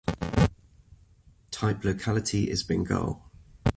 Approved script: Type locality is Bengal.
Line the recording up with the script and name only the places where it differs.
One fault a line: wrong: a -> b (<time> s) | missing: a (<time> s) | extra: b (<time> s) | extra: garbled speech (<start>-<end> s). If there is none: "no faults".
no faults